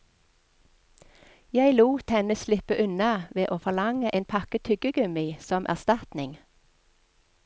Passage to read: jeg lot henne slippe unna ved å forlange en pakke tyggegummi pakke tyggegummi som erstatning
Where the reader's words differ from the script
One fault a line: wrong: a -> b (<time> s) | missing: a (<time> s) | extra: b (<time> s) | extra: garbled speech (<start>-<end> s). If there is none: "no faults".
missing: pakke tyggegummi (5.3 s)